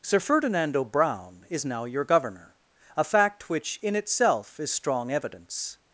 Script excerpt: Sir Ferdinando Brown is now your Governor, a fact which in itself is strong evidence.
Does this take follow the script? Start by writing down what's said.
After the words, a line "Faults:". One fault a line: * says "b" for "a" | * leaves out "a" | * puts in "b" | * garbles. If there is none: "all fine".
Sir Ferdinando Brown is now your Governor, a fact which in itself is strong evidence.
Faults:
all fine